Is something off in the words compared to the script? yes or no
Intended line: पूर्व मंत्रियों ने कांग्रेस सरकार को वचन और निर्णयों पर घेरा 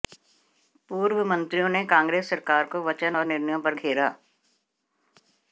no